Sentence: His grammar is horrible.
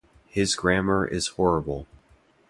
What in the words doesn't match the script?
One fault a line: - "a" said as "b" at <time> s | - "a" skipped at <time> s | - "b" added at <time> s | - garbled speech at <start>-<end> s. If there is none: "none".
none